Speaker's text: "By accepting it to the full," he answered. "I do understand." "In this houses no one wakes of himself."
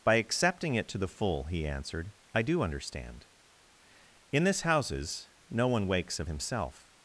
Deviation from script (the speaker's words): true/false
false